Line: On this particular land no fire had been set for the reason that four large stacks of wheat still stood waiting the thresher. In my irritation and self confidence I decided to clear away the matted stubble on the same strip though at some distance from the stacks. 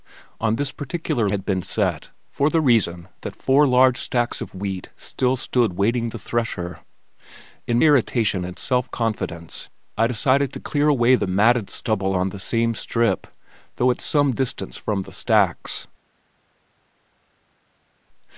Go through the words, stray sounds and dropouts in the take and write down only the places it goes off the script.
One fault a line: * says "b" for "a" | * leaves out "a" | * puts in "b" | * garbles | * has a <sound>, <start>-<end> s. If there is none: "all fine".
* leaves out "land no fire"
* leaves out "my"